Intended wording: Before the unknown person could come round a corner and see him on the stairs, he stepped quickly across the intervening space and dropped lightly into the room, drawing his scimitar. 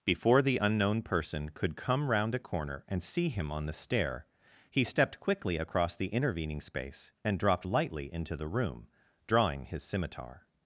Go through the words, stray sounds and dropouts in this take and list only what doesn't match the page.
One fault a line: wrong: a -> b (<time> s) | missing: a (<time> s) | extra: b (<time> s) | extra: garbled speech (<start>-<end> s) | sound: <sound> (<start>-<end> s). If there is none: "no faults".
wrong: stairs -> stair (3.7 s)